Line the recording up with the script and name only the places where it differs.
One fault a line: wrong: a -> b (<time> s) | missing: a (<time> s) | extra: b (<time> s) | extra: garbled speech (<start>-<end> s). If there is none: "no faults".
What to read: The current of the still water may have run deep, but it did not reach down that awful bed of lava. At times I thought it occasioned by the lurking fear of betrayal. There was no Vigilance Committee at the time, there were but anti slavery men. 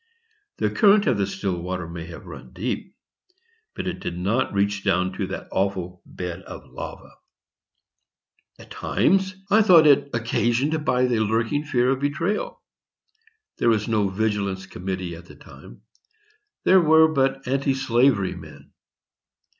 extra: to (5.1 s)